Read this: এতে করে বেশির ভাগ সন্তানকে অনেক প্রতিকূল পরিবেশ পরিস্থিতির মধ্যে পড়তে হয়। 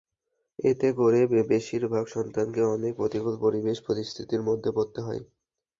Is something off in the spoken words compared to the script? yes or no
no